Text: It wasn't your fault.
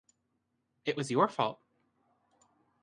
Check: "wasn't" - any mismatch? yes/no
yes